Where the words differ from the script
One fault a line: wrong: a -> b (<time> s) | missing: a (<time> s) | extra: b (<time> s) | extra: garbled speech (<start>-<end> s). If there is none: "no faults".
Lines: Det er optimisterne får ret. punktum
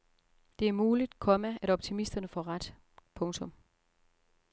extra: muligt komma at (0.7 s)